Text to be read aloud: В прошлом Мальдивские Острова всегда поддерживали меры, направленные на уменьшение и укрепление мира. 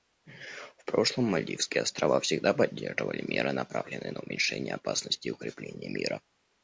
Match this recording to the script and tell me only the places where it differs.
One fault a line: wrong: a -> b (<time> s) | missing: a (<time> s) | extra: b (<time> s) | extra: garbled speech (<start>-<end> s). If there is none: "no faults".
extra: опасности (4.8 s)